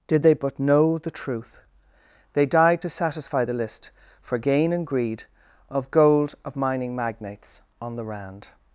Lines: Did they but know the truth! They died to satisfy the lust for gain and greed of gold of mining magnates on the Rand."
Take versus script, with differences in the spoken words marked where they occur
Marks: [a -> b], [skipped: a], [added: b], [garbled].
Did they but know the truth! They died to satisfy the [lust -> list] for gain and greed of gold of mining magnates on the Rand."